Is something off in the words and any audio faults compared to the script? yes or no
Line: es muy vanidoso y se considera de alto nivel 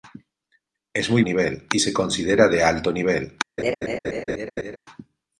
yes